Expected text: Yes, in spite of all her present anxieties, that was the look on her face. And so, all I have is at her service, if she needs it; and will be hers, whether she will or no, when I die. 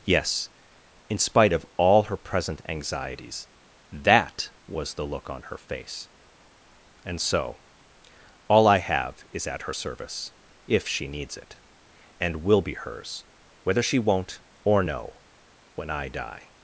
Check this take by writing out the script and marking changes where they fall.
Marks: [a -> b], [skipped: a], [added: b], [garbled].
Yes, in spite of all her present anxieties, that was the look on her face. And so, all I have is at her service, if she needs it; and will be hers, whether she [will -> won't] or no, when I die.